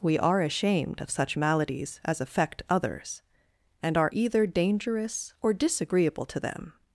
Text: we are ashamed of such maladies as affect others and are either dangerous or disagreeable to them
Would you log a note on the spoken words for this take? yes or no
no